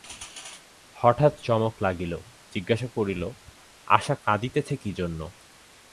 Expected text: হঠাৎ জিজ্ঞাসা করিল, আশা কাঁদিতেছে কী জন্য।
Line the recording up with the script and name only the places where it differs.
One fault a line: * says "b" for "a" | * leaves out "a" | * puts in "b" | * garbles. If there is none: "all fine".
* puts in "চমক লাগিল"